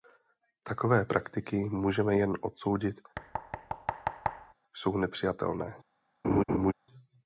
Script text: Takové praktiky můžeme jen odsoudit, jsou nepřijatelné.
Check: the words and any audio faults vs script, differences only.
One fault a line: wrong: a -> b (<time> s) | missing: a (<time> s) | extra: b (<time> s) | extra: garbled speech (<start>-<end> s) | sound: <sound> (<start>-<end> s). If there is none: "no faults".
sound: thud (3.1-4.5 s)
sound: laugh (6.2-6.7 s)